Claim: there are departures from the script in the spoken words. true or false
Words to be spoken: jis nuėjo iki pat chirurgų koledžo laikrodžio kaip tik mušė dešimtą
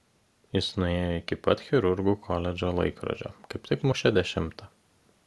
false